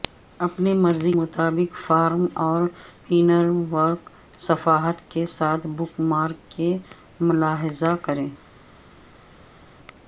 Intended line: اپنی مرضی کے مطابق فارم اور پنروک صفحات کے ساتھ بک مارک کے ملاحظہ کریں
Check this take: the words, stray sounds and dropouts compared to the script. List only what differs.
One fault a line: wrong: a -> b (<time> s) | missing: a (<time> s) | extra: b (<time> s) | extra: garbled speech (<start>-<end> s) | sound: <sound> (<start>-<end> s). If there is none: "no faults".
missing: کے (1.1 s)